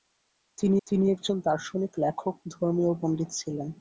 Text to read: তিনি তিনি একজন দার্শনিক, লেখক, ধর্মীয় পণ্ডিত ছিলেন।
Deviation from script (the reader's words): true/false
false